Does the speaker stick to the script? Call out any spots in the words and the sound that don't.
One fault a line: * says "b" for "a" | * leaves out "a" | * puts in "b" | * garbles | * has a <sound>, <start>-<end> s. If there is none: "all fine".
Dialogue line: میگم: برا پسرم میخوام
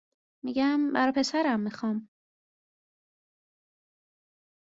all fine